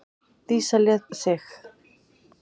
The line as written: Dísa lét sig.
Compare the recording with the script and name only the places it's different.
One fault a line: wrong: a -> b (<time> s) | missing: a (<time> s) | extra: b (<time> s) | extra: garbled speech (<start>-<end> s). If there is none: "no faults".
no faults